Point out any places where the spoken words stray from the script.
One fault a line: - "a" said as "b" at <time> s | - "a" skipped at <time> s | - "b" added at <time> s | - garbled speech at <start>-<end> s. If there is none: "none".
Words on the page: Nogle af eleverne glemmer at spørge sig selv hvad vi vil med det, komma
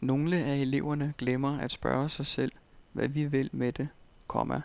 none